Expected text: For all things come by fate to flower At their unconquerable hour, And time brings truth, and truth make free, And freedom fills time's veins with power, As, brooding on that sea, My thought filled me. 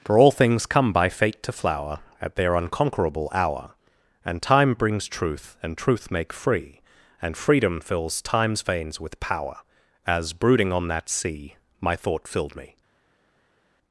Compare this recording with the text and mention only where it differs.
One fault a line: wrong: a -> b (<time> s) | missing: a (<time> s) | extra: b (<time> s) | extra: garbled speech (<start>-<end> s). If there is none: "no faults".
no faults